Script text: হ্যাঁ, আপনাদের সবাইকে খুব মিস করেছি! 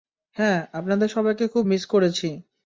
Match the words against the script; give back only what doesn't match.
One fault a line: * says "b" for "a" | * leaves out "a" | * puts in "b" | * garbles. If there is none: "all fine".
all fine